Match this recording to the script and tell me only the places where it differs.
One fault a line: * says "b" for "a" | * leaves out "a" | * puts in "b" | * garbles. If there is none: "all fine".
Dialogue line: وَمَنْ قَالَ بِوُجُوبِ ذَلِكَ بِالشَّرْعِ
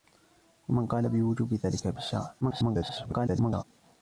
* garbles